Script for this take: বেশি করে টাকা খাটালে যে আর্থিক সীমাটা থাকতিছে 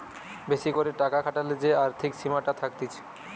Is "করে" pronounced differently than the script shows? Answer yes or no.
no